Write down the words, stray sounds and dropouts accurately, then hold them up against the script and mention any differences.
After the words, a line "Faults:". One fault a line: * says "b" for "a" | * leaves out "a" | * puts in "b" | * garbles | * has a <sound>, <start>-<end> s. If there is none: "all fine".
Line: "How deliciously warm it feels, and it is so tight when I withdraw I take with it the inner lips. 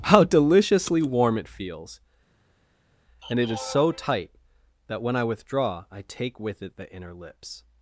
"How deliciously warm it feels, and it is so tight that when I withdraw I take with it the inner lips.
Faults:
* puts in "that"